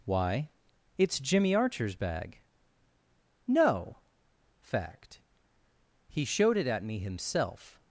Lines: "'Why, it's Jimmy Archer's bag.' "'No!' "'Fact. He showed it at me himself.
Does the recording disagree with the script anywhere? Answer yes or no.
no